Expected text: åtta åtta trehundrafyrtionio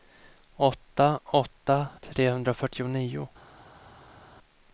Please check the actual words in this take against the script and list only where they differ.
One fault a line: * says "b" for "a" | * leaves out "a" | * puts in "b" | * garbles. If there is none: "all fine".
all fine